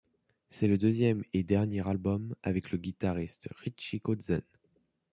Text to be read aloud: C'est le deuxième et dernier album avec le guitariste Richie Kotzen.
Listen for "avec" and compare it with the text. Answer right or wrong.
right